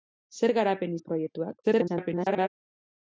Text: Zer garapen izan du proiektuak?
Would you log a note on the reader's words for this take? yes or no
yes